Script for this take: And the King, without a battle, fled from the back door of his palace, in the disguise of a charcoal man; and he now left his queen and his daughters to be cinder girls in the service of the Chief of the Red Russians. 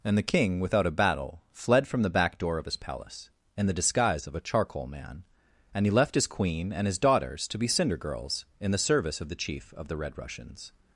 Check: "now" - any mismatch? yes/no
yes